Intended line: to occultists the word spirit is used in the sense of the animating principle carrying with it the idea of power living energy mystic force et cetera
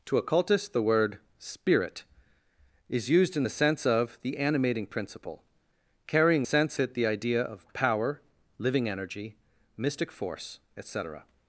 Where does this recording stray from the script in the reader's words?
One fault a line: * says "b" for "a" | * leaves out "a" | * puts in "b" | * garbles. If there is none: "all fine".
* says "sense" for "with"